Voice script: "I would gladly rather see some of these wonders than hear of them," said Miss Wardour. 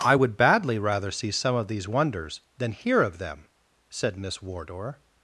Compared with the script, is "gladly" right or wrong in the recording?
wrong